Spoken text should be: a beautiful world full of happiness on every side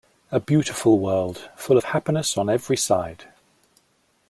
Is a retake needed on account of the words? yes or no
no